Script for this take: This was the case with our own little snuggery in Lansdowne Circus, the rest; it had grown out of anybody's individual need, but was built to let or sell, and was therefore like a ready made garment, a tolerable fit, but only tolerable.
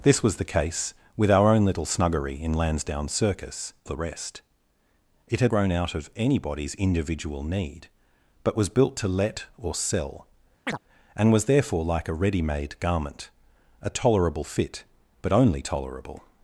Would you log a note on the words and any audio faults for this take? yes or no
yes